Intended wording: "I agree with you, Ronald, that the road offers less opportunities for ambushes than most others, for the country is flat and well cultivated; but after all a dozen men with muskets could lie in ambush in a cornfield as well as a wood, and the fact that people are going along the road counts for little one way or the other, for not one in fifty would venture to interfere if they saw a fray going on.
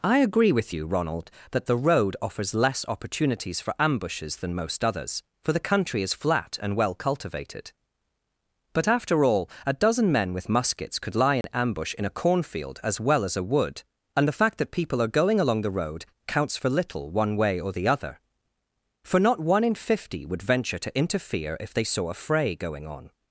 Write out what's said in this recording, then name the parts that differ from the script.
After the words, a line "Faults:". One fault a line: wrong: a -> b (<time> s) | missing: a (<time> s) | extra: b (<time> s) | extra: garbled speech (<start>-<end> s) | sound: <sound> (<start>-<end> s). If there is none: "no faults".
"I agree with you, Ronald, that the road offers less opportunities for ambushes than most others, for the country is flat and well cultivated; but after all a dozen men with muskets could lie in ambush in a cornfield as well as a wood, and the fact that people are going along the road counts for little one way or the other, for not one in fifty would venture to interfere if they saw a fray going on.
Faults:
sound: dropout (11.4-11.4 s)